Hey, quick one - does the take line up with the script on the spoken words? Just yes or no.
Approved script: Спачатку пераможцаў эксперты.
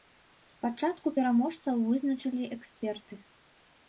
no